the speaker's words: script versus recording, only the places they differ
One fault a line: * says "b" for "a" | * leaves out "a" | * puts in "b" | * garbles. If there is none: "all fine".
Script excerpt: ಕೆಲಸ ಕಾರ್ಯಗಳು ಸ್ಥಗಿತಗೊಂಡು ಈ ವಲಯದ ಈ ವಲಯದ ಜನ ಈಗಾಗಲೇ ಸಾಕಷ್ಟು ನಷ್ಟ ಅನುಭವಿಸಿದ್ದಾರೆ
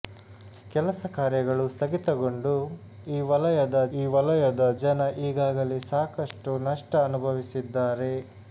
all fine